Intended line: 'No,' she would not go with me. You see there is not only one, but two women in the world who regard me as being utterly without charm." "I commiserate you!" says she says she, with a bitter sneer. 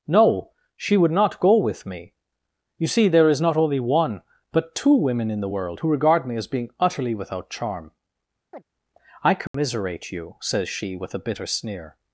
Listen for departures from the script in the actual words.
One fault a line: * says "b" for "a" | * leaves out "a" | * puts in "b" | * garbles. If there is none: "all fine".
* leaves out "says she"